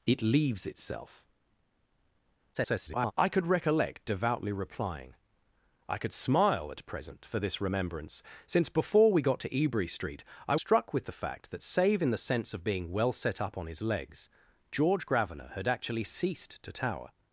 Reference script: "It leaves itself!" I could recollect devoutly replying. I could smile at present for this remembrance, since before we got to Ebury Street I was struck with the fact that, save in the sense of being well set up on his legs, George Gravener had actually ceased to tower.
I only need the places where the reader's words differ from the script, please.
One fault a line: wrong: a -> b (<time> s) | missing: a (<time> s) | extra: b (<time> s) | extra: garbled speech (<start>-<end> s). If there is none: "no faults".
extra: garbled speech (2.5-3.1 s)
missing: was (10.6 s)